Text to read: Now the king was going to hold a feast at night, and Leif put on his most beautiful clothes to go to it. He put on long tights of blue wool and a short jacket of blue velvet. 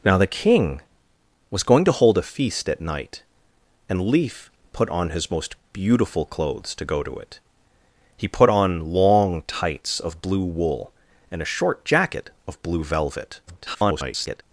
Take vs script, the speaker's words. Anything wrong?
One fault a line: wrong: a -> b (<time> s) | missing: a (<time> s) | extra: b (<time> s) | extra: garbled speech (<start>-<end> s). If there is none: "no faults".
extra: garbled speech (13.5-14.4 s)